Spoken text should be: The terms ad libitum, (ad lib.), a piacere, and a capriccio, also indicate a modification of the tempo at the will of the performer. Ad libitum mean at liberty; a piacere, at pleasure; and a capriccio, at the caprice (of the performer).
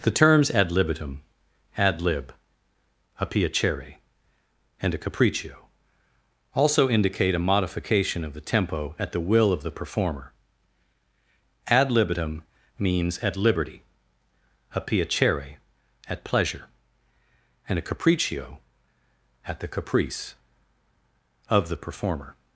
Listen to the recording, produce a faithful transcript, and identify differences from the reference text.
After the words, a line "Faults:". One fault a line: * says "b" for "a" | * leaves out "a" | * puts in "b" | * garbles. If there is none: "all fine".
The terms ad libitum, (ad lib.), a piacere, and a capriccio, also indicate a modification of the tempo at the will of the performer. Ad libitum means at liberty; a piacere, at pleasure; and a capriccio, at the caprice (of the performer).
Faults:
* says "means" for "mean"